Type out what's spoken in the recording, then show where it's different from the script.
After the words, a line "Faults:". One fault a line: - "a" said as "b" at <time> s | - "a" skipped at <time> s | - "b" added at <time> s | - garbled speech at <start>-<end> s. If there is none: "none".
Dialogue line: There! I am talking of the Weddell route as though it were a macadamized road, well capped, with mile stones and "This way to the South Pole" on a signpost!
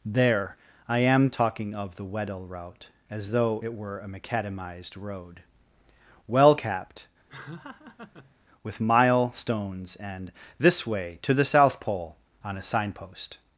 There! I am talking of the Weddell route as though it were a macadamized road, well capped, with mile stones and "This way to the South Pole" on a signpost!
Faults:
none